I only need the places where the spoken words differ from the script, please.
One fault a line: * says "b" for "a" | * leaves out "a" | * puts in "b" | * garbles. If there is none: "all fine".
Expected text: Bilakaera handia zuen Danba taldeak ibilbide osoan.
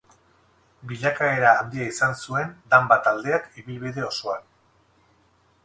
* puts in "izan"